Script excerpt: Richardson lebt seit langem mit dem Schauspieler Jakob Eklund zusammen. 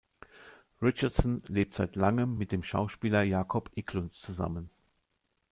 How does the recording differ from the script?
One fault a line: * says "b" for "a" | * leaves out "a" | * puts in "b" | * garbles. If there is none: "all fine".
all fine